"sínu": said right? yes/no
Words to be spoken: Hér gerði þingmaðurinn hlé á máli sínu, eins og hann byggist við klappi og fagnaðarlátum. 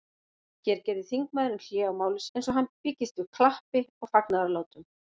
no